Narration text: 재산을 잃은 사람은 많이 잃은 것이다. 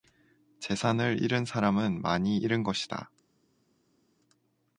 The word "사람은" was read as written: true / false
true